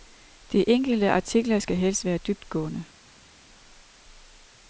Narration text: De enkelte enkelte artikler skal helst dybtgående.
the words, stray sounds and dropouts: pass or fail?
fail